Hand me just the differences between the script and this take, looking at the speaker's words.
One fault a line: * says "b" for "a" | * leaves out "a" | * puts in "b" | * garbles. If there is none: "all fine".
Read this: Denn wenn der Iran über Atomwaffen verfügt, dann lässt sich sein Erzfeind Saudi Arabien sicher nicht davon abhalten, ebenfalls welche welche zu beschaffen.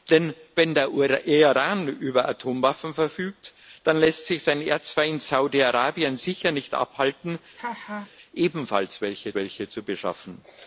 all fine